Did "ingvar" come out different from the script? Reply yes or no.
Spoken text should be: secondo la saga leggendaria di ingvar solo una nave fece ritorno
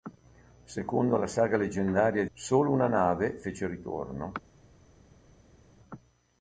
yes